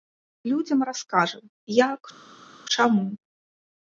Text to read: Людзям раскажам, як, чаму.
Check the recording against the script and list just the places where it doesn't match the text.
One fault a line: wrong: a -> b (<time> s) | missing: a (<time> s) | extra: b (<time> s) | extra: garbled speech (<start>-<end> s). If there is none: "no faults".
no faults